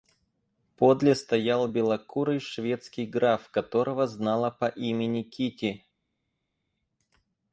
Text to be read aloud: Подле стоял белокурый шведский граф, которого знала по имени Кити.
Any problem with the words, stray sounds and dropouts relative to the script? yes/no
no